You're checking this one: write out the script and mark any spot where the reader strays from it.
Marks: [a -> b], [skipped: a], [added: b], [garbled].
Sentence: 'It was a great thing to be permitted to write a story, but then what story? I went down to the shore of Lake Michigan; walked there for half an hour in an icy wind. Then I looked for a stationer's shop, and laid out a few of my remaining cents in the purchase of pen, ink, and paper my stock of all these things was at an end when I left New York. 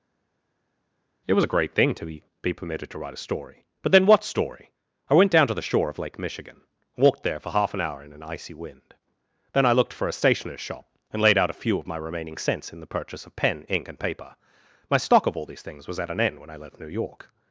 'It was a great thing to be [added: be] permitted to write a story, but then what story? I went down to the shore of Lake Michigan; walked there for half an hour in an icy wind. Then I looked for a stationer's shop, and laid out a few of my remaining cents in the purchase of pen, ink, and paper my stock of all these things was at an end when I left New York.